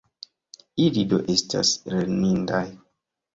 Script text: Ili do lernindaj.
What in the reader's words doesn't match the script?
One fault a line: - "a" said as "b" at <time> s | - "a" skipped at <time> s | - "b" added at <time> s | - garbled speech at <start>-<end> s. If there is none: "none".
- "estas" added at 1.4 s